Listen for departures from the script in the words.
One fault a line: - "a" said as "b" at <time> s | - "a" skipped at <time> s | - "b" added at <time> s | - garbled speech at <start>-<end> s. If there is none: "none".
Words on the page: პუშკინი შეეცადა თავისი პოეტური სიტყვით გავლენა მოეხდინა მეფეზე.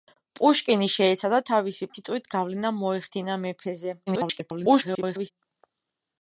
- "პოეტური" skipped at 1.9 s
- garbled speech at 4.1-5.3 s